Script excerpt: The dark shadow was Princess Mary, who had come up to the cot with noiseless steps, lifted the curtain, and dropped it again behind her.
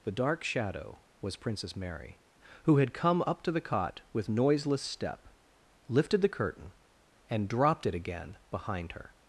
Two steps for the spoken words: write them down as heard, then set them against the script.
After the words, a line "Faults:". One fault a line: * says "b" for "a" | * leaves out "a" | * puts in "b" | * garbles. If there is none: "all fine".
The dark shadow was Princess Mary, who had come up to the cot with noiseless step, lifted the curtain, and dropped it again behind her.
Faults:
* says "step" for "steps"